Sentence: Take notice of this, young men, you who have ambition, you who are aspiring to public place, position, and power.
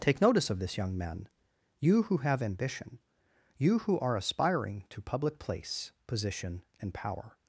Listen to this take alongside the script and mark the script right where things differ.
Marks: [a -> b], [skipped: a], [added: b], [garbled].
Take notice of this, young men, you who have ambition, you who are aspiring to public place, position, and power.